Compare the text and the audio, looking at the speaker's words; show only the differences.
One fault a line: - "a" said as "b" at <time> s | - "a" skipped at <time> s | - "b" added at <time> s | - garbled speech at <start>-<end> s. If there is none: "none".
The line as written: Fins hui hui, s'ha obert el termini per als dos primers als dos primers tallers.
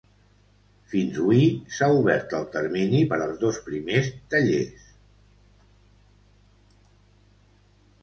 - "hui" skipped at 1.4 s
- "als dos primers" skipped at 4.1 s